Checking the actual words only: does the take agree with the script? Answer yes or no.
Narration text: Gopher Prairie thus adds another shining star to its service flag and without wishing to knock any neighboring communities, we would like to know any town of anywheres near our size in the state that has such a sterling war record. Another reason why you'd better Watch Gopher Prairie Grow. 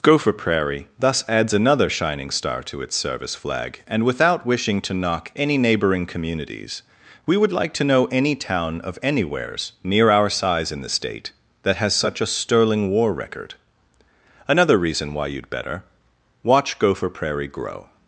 yes